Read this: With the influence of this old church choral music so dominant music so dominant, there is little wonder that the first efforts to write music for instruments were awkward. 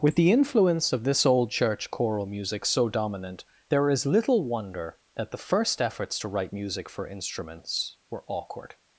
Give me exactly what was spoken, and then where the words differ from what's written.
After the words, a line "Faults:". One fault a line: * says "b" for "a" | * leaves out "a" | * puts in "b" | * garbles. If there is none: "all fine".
With the influence of this old church choral music so dominant, there is little wonder that the first efforts to write music for instruments were awkward.
Faults:
* leaves out "music so dominant"